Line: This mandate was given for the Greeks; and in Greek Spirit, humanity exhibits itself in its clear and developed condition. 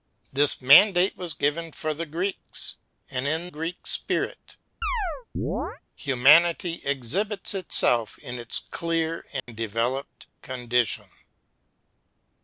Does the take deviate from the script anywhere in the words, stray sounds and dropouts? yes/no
yes